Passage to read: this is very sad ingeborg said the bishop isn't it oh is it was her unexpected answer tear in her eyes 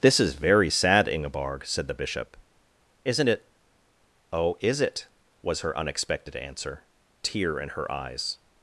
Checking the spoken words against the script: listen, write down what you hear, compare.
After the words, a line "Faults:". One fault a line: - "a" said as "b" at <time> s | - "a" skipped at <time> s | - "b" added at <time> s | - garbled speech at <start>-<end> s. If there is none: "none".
this is very sad ingeborg said the bishop isn't it oh is it was her unexpected answer tear in her eyes
Faults:
none